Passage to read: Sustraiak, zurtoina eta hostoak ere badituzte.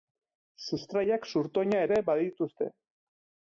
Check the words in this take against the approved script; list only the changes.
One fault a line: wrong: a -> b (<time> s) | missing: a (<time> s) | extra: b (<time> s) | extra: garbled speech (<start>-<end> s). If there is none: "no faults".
missing: eta hostoak (1.8 s)